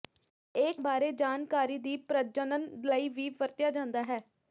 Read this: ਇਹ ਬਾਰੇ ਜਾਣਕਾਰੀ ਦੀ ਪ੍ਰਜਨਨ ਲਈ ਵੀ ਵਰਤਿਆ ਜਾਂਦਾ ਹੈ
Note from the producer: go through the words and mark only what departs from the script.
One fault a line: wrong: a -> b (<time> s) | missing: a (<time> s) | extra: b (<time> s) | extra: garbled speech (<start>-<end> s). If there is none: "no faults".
no faults